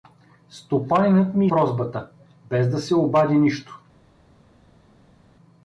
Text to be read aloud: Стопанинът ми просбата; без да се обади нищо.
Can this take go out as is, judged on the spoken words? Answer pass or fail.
pass